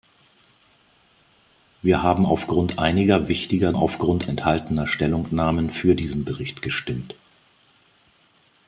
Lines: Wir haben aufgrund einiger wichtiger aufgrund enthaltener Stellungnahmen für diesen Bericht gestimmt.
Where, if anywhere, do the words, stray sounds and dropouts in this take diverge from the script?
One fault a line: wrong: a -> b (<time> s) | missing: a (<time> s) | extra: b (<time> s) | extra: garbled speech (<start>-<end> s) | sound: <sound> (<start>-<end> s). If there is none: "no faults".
no faults